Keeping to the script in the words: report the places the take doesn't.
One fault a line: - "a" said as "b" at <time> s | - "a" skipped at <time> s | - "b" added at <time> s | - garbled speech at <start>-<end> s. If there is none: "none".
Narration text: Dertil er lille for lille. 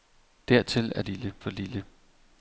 none